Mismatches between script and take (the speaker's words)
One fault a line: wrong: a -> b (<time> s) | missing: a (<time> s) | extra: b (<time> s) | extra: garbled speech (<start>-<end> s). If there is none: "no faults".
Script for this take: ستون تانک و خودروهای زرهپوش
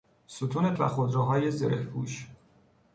missing: تانک (0.7 s)